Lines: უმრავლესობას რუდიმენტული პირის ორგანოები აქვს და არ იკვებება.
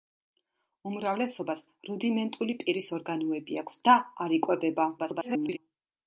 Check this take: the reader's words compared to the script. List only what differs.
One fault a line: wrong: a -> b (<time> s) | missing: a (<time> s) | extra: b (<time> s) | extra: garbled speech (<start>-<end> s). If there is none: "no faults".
extra: garbled speech (5.0-5.6 s)